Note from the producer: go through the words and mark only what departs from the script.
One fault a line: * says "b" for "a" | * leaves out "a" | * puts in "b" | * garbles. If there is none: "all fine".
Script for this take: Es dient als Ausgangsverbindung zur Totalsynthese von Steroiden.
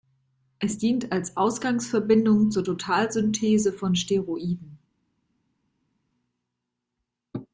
all fine